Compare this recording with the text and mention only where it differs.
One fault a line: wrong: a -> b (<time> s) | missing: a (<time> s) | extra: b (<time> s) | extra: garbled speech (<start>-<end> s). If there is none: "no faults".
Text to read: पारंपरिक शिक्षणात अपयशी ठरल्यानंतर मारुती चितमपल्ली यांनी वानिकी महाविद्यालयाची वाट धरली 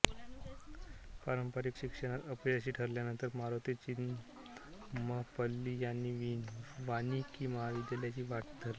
no faults